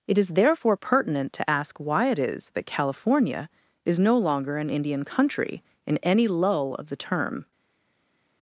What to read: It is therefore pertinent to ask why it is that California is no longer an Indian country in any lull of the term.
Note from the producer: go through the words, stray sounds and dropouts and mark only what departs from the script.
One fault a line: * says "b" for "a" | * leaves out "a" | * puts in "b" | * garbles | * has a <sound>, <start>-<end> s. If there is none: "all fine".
all fine